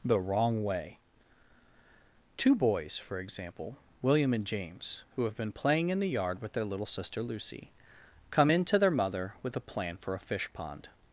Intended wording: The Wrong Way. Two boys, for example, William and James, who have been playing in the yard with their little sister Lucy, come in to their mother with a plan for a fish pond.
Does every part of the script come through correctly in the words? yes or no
yes